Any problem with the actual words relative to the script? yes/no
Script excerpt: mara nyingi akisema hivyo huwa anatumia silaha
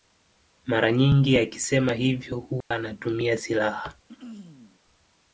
no